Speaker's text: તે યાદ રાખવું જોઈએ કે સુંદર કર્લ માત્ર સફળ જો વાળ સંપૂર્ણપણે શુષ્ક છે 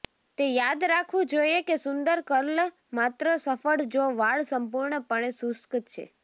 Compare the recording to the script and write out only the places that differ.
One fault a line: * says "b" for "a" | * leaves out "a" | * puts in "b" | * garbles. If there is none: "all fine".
all fine